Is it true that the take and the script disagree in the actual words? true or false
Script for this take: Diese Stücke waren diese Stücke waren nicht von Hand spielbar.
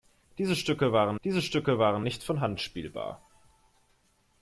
false